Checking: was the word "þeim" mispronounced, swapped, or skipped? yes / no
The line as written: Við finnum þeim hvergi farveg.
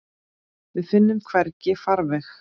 yes